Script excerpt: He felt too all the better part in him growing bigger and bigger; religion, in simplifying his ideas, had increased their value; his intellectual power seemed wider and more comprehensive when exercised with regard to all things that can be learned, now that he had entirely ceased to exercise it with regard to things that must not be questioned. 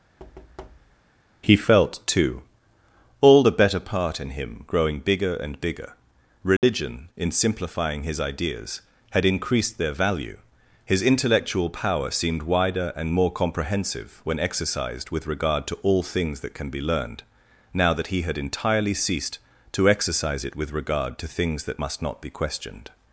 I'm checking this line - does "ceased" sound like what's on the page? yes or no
yes